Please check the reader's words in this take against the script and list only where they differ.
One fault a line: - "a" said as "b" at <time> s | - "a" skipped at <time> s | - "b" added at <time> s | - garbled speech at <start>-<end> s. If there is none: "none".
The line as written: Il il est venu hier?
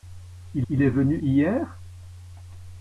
none